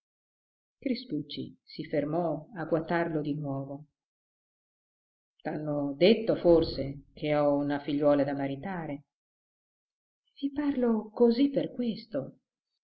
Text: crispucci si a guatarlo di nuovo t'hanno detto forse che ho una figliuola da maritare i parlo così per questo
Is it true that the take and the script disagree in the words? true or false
true